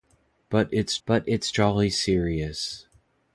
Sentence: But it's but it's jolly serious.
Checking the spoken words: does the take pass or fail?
pass